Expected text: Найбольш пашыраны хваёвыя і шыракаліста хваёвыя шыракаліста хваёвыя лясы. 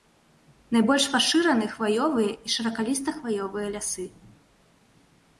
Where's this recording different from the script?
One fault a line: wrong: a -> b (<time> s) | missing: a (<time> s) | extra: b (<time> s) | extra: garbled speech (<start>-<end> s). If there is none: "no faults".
missing: шыракаліста хваёвыя (3.7 s)